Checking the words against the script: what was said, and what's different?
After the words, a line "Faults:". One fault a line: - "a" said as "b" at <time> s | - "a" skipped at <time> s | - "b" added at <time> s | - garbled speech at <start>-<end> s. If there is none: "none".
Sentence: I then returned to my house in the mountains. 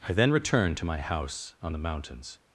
I then returned to my house on the mountains.
Faults:
- "in" said as "on" at 1.6 s